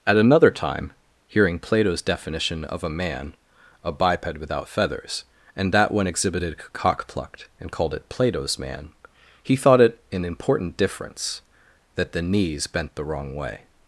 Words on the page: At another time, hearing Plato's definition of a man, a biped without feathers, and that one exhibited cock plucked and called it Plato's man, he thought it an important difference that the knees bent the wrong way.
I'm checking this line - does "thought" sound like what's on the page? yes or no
yes